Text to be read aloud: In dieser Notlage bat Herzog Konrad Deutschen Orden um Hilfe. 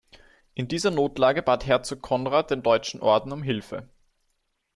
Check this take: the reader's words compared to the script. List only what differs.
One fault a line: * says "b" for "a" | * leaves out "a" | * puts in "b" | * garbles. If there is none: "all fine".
* puts in "den"